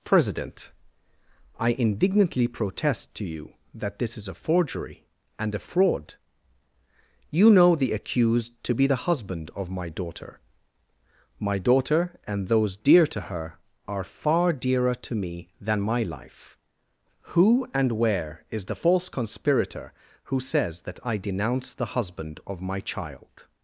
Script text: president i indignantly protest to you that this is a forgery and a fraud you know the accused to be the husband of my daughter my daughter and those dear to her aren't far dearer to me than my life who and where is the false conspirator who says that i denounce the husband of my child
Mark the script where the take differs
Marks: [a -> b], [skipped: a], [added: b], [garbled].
president i indignantly protest to you that this is a forgery and a fraud you know the accused to be the husband of my daughter my daughter and those dear to her [aren't -> are] far dearer to me than my life who and where is the false conspirator who says that i denounce the husband of my child